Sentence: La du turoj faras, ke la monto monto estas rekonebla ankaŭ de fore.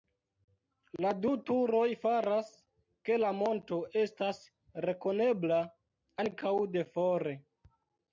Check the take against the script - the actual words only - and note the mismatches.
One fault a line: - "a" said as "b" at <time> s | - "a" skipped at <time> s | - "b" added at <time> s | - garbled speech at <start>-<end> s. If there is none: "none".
- "monto" skipped at 3.8 s